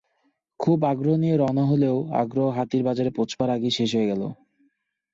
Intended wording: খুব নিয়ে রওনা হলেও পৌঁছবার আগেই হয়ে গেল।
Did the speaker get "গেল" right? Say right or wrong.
right